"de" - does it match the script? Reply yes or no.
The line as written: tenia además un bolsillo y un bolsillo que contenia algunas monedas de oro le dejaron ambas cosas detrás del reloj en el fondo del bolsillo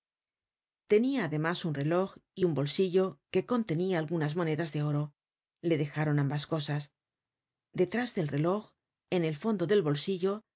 yes